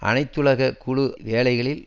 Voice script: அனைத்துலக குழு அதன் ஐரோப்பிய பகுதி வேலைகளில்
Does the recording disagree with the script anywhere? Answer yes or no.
yes